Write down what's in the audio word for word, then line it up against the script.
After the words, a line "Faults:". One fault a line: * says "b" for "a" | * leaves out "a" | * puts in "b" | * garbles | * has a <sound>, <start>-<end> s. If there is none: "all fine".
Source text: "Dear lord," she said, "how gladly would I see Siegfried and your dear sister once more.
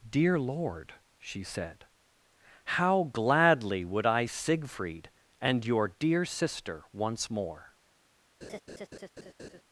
"Dear lord," she said, "how gladly would I Siegfried and your dear sister once more.
Faults:
* leaves out "see"
* has a laugh, 8.4-9.6 s